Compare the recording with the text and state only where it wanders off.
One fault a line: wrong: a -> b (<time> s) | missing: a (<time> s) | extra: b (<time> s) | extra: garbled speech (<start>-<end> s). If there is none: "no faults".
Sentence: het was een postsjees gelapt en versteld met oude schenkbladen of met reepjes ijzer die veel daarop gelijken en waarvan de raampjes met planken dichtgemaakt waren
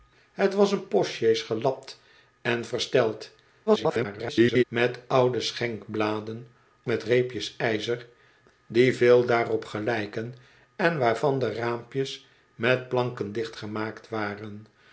extra: garbled speech (3.7-4.6 s)
missing: of (6.5 s)